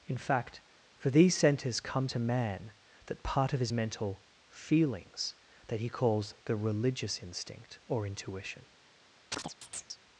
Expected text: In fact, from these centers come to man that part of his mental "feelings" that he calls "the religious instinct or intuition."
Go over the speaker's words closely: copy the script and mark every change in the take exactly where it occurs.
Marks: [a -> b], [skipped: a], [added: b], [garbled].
In fact, [from -> for] these centers come to man that part of his mental "feelings" that he calls "the religious instinct or intuition."